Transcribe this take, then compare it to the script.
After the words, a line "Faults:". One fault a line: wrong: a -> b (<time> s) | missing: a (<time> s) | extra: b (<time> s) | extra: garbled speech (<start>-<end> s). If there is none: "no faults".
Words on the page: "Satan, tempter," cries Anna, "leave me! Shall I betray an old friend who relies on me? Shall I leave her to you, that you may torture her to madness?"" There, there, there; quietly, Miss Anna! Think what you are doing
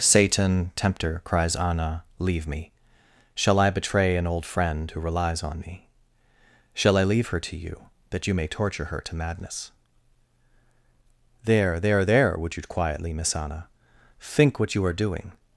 "Satan, tempter," cries Anna, "leave me! Shall I betray an old friend who relies on me? Shall I leave her to you, that you may torture her to madness?"" There, there, there; would you quietly, Miss Anna! Think what you are doing
Faults:
extra: would you (12.4 s)